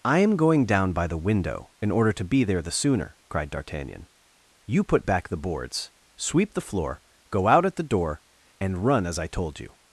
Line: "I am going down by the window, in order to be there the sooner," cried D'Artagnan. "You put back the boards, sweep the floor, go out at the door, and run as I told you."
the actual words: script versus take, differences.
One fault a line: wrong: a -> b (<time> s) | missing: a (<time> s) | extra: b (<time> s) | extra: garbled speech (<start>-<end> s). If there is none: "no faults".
no faults